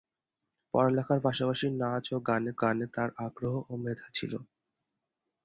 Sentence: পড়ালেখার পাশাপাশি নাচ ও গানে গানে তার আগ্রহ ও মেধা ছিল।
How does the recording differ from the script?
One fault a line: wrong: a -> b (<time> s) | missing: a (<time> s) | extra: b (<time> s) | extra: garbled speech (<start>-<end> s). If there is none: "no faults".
no faults